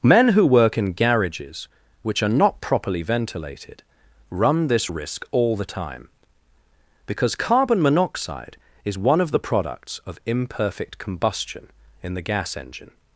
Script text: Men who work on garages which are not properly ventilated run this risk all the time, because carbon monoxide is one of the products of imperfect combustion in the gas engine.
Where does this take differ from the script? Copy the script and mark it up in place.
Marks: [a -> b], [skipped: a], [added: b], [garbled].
Men who work [on -> in] garages which are not properly ventilated run this risk all the time, because carbon monoxide is one of the products of imperfect combustion in the gas engine.